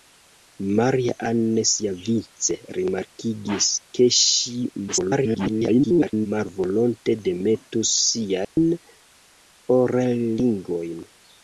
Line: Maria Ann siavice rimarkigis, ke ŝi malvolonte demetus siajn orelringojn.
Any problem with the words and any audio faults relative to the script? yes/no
yes